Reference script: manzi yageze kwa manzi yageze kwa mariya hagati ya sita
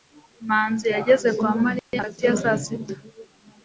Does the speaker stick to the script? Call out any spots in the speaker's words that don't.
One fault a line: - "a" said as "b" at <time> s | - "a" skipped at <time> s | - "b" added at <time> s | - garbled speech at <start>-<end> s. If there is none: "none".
- "manzi yageze kwa" skipped at 1.5 s
- "saa" added at 2.4 s